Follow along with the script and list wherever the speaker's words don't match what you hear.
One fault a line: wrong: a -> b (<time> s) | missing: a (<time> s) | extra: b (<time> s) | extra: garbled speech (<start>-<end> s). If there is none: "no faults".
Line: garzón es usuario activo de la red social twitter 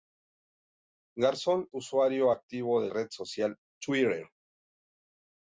missing: es (1.7 s)
missing: la (2.9 s)